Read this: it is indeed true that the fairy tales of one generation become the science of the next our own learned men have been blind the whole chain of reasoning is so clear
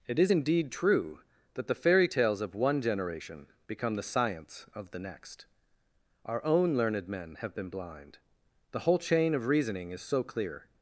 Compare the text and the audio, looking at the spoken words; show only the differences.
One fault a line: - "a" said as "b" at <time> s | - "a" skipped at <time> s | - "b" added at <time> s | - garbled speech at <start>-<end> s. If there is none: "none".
none